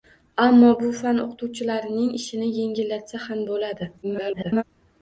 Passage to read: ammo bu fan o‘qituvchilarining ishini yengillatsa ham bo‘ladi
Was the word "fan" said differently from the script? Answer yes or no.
no